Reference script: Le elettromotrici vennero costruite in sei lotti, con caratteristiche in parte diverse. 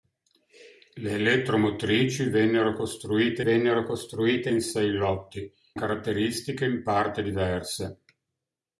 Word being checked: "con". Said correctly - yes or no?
no